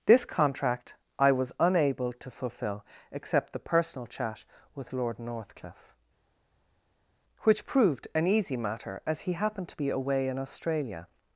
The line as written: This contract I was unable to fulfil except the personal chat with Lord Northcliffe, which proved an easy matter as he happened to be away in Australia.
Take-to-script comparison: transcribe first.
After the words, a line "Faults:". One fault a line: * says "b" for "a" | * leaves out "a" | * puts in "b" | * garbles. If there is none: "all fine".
This contract I was unable to fulfil except the personal chat with Lord Northcliffe, which proved an easy matter as he happened to be away in Australia.
Faults:
all fine